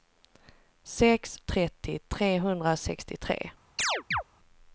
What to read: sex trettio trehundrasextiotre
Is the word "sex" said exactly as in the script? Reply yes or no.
yes